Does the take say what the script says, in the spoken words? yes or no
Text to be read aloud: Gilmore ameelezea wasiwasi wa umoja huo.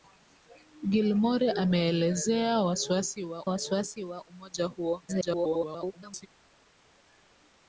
no